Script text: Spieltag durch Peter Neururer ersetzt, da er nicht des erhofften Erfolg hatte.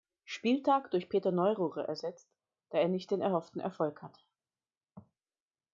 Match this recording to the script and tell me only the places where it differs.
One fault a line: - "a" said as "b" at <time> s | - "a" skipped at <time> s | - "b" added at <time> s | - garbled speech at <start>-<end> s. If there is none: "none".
- "des" said as "den" at 3.1 s